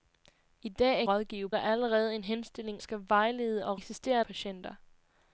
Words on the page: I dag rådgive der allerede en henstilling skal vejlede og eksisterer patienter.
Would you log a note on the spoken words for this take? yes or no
no